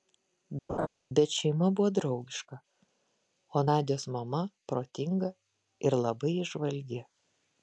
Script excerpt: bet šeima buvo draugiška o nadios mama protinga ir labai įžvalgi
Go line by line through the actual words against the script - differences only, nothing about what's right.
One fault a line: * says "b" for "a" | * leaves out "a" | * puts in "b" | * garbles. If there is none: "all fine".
all fine